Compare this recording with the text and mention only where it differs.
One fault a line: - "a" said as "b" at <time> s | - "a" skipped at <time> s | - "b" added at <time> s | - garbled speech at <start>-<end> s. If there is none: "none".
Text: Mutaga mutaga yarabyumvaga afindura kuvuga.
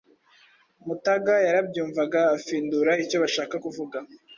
- "mutaga" skipped at 1.3 s
- "icyo bashaka" added at 3.0 s